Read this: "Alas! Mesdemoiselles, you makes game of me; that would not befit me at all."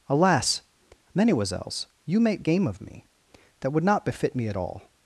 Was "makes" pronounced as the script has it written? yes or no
no